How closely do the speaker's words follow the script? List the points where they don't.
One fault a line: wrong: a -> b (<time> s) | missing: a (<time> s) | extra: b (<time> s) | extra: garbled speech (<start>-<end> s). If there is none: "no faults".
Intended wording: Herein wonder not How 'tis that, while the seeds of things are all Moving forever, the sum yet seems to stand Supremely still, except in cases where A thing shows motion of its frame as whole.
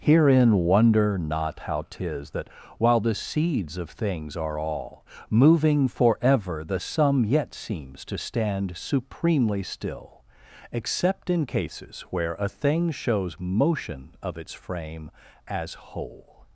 no faults